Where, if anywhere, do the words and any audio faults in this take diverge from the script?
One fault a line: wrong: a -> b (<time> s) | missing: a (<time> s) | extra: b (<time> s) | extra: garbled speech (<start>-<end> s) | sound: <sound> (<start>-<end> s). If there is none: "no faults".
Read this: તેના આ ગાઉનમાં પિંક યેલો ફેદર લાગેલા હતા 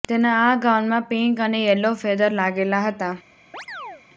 extra: અને (1.4 s)
sound: chirp (3.5-4.0 s)